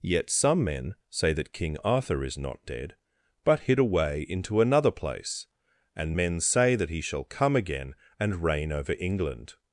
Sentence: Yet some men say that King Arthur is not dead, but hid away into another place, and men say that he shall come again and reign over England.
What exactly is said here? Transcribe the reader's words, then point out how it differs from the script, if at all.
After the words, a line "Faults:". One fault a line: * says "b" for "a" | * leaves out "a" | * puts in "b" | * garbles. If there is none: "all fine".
Yet some men say that King Arthur is not dead, but hid away into another place, and men say that he shall come again and reign over England.
Faults:
all fine